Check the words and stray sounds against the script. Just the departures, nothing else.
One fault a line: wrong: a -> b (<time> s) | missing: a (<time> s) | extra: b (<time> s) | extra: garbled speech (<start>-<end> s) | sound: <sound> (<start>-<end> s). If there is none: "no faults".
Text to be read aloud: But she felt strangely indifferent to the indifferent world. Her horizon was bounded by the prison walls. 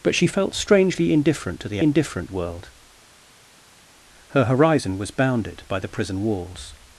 no faults